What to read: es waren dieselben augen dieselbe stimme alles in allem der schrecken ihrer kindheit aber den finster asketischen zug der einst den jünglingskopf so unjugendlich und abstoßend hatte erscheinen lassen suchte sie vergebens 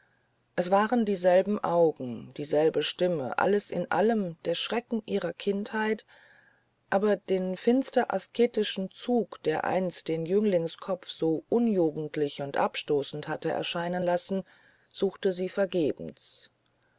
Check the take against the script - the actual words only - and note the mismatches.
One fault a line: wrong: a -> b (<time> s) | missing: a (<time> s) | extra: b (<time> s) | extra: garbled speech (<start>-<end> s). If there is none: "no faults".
no faults